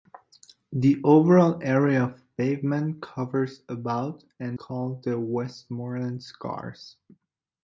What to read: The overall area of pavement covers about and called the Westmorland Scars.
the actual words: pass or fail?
pass